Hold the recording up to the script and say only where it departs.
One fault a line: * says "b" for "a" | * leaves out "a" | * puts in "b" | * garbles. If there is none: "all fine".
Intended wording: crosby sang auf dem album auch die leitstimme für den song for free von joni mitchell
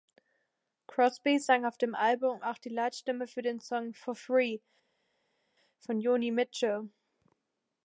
all fine